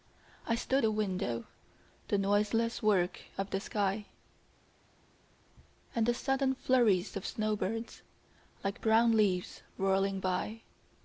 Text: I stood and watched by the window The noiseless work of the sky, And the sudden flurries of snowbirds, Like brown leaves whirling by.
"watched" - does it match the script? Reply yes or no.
no